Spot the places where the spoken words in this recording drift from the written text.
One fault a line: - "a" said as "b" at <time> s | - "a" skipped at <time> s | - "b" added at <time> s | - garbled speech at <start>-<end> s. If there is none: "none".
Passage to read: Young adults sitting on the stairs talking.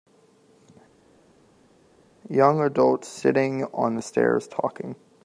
none